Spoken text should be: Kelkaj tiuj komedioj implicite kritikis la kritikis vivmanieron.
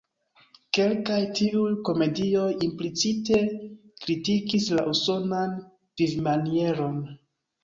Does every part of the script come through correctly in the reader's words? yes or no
no